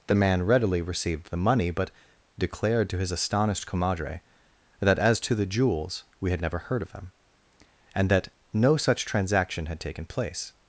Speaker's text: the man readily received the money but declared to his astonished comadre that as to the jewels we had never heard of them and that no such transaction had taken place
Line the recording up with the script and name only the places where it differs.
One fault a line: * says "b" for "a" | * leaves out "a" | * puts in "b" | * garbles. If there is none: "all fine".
all fine